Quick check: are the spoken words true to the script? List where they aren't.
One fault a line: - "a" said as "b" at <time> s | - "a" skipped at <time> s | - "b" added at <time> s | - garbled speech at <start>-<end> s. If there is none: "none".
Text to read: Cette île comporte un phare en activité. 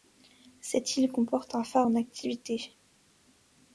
none